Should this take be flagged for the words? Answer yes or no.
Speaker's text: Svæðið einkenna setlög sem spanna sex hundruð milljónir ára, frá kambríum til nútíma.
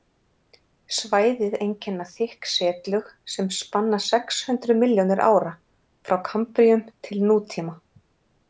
yes